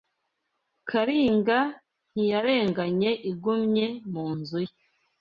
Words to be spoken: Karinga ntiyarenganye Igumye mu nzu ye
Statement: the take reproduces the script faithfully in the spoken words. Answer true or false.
true